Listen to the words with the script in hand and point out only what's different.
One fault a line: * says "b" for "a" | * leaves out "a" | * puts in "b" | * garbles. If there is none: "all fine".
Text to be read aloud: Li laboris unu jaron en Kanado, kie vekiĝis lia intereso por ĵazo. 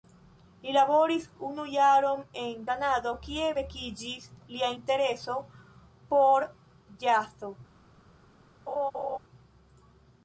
all fine